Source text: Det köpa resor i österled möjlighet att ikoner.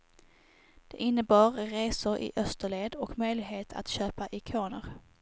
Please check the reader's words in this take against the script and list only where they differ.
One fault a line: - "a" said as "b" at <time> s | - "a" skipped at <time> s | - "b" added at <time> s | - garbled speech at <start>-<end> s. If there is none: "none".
- "köpa" said as "innebar" at 0.9 s
- "och" added at 2.9 s
- "köpa" added at 3.9 s